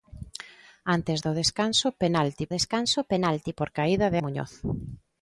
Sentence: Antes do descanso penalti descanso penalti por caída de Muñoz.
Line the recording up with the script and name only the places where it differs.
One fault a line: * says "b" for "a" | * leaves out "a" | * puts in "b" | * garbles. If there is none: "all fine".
all fine